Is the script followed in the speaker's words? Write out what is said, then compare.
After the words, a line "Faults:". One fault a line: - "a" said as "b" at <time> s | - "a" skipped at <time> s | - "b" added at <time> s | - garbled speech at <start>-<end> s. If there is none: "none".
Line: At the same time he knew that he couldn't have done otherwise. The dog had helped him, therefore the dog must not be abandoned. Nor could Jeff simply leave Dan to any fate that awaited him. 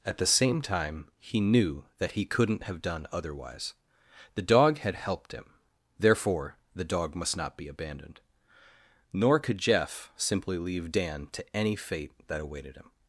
At the same time he knew that he couldn't have done otherwise. The dog had helped him, therefore the dog must not be abandoned. Nor could Jeff simply leave Dan to any fate that awaited him.
Faults:
none